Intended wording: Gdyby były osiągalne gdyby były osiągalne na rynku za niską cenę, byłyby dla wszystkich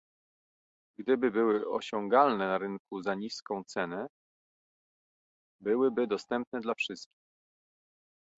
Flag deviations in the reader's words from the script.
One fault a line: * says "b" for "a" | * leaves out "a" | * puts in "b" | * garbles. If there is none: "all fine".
* leaves out "gdyby były osiągalne"
* puts in "dostępne"